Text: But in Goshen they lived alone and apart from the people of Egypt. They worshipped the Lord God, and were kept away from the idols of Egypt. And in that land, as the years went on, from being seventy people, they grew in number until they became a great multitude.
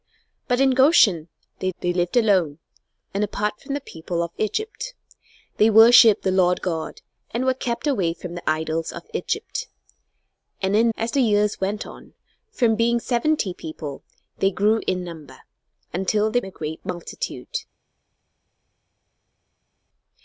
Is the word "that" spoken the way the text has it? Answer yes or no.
no